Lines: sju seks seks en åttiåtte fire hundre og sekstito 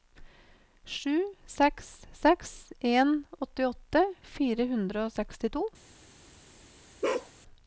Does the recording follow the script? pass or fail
pass